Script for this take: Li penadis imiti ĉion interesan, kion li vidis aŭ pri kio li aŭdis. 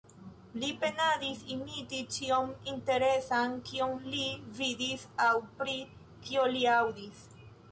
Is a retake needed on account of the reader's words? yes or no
no